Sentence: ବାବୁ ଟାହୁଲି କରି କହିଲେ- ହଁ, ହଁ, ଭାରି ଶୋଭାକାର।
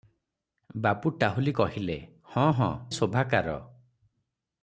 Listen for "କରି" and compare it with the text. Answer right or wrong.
wrong